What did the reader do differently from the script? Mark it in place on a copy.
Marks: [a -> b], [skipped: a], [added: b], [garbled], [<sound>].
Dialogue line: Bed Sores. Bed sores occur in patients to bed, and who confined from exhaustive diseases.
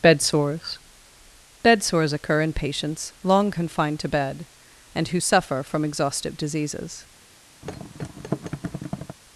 Bed Sores. Bed sores occur in patients [added: long confined] to bed, and who [confined -> suffer] from exhaustive diseases. [thud]